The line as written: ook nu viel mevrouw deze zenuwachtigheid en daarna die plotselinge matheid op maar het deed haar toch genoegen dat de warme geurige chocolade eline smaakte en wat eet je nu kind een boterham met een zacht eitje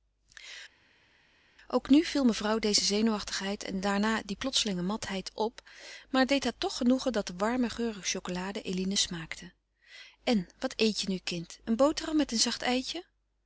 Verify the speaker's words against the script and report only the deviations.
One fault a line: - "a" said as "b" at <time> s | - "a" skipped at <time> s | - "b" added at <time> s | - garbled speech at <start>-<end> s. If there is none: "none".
none